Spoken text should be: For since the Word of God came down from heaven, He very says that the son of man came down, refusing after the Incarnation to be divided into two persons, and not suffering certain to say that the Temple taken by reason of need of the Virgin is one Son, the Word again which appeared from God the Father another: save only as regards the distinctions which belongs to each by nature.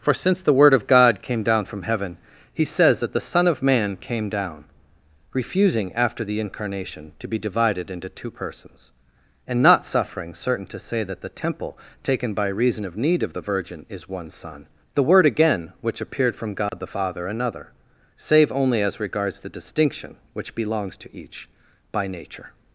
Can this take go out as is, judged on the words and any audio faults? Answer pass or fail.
fail